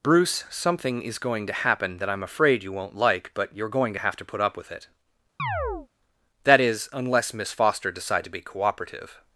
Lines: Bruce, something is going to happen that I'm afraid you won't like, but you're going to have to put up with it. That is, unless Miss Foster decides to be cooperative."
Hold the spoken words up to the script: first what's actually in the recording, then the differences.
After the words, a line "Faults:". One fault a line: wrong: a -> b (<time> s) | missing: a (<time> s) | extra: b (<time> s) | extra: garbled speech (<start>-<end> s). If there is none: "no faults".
Bruce, something is going to happen that I'm afraid you won't like, but you're going to have to put up with it. That is, unless Miss Foster decide to be cooperative."
Faults:
wrong: decides -> decide (7.9 s)